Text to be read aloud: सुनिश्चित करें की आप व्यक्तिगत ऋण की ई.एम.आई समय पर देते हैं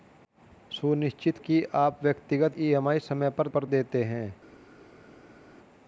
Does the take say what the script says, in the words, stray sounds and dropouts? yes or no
no